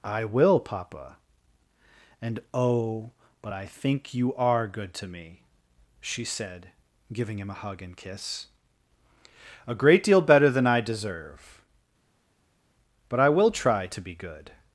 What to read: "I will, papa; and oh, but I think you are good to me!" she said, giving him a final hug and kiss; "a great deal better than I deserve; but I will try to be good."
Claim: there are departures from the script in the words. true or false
true